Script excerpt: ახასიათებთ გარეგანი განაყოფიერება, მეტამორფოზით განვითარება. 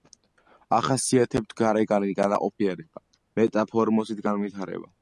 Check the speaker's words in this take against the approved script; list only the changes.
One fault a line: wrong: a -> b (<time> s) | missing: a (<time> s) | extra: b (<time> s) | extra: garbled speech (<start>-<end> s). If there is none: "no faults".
no faults